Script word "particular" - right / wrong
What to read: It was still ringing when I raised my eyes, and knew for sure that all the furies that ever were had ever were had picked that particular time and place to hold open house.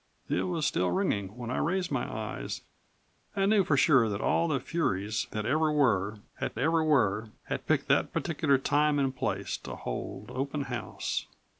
right